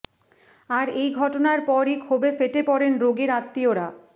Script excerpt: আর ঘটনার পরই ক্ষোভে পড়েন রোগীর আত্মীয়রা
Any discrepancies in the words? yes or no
yes